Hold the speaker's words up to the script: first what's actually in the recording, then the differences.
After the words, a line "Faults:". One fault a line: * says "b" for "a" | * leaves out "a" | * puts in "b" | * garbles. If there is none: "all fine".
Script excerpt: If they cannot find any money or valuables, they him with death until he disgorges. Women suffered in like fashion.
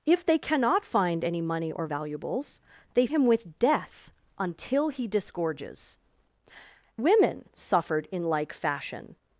If they cannot find any money or valuables, they him with death until he disgorges. Women suffered in like fashion.
Faults:
all fine